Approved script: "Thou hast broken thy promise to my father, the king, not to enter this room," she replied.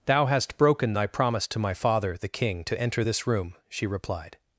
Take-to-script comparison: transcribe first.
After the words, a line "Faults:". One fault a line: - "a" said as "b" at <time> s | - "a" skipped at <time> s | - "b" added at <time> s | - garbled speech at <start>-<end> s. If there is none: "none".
"Thou hast broken thy promise to my father, the king, to enter this room," she replied.
Faults:
- "not" skipped at 2.6 s